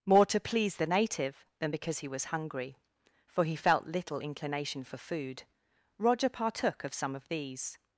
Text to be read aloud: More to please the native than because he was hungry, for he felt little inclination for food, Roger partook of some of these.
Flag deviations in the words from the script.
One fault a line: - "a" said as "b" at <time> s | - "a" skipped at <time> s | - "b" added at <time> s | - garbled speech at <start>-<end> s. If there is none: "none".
none